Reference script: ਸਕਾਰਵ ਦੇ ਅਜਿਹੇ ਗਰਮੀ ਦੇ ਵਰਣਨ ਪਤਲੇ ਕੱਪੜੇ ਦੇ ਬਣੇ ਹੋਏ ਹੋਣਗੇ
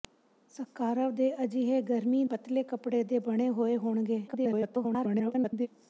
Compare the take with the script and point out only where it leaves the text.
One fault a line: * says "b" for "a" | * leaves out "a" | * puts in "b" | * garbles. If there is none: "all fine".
* leaves out "ਦੇ ਵਰਣਨ"
* garbles